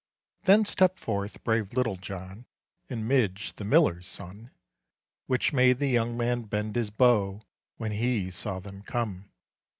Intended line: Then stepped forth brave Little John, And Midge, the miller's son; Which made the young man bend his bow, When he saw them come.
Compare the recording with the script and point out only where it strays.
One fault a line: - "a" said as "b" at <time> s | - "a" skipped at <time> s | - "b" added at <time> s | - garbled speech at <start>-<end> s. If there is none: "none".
none